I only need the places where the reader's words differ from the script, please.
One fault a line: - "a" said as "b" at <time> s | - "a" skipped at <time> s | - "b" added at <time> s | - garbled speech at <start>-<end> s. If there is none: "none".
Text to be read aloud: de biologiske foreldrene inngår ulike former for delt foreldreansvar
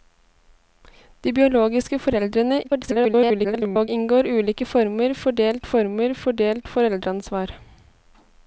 - garbled speech at 2.6-3.9 s
- "former for delt" added at 5.7 s